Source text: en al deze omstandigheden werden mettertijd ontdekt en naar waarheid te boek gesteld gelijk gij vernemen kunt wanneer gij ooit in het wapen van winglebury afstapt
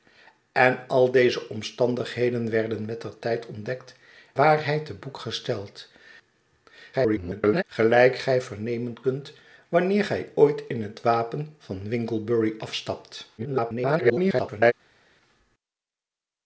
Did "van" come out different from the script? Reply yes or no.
no